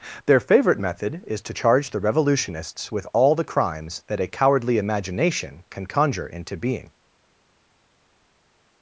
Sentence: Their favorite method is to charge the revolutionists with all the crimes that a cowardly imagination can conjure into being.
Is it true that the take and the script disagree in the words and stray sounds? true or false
false